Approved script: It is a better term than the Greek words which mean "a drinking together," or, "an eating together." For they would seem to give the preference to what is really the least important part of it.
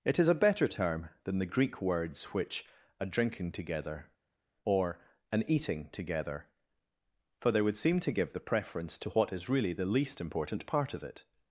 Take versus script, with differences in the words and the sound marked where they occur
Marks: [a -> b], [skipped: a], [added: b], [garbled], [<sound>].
It is a better term than the Greek words which [skipped: mean] "a drinking together," or, "an eating together." For they would seem to give the preference to what is really the least important part of it.